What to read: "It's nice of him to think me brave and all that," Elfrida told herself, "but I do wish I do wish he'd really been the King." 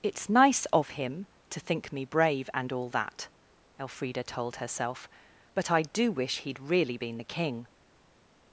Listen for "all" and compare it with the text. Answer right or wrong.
right